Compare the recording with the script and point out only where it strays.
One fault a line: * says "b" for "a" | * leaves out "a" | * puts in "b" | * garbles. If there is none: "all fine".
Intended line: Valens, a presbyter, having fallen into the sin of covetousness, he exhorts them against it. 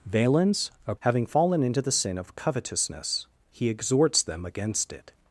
* leaves out "presbyter"